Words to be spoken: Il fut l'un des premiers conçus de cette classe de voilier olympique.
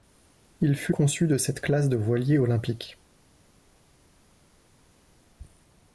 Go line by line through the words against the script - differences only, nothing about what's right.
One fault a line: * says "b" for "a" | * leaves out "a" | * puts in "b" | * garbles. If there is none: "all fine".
* leaves out "l'un des premiers"